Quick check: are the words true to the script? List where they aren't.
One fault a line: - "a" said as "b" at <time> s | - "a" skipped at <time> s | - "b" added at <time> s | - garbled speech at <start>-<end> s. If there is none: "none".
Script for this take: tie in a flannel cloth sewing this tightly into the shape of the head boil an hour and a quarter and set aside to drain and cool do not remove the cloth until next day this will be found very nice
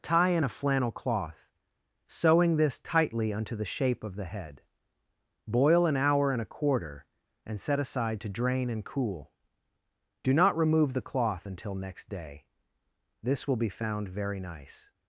- "into" said as "unto" at 3.3 s